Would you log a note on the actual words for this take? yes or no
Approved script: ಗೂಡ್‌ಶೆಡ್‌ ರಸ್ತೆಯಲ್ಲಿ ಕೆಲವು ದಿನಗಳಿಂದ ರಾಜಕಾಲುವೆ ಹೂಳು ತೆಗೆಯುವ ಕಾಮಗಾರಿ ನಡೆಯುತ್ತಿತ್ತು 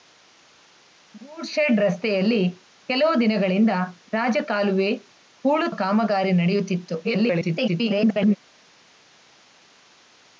yes